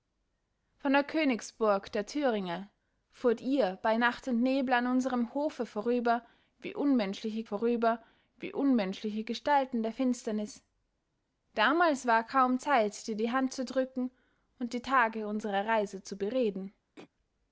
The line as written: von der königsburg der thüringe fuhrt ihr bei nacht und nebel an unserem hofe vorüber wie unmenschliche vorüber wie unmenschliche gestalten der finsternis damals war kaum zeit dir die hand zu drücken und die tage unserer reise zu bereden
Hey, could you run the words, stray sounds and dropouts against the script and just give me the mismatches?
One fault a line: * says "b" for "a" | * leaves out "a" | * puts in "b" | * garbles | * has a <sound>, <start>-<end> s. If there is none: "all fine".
* has a throat clearing, 17.0-17.1 s